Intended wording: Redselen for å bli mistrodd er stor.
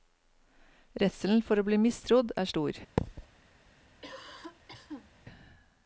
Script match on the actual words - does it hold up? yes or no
yes